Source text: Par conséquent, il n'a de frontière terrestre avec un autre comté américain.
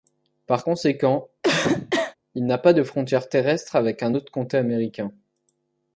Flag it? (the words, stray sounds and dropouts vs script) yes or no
yes